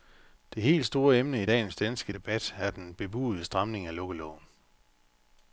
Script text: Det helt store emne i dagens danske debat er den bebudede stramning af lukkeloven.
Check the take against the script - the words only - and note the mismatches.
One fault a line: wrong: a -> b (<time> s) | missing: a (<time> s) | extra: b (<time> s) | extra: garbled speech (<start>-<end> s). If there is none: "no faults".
no faults